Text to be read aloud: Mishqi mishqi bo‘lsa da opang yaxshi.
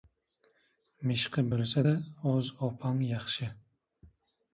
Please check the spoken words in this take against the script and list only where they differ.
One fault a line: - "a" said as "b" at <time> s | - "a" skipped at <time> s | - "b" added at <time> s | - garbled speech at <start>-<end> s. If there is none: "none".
- "mishqi" skipped at 1.4 s
- "o‘z" added at 2.3 s